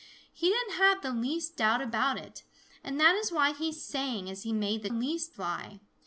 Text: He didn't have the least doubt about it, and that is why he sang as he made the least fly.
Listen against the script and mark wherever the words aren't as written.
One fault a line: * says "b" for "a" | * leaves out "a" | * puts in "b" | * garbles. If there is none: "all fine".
all fine